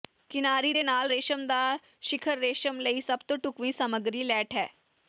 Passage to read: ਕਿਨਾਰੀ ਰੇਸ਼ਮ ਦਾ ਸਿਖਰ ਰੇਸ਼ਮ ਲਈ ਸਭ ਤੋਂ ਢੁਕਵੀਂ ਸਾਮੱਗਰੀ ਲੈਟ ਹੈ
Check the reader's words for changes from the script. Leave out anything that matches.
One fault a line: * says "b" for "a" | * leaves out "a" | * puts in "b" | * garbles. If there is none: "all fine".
* puts in "ਦੇ ਨਾਲ"